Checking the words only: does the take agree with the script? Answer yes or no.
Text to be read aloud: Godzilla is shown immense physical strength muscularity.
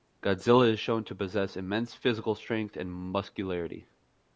no